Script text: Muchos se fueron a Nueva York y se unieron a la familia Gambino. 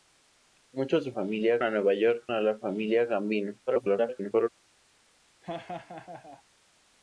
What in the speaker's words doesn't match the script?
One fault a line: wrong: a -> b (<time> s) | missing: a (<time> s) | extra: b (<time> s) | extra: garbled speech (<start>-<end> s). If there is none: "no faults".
wrong: fueron -> familia (1.1 s)
missing: y se unieron (2.3 s)
extra: garbled speech (3.7-4.5 s)